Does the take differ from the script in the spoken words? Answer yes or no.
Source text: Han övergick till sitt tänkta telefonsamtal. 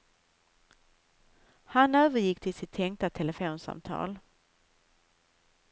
no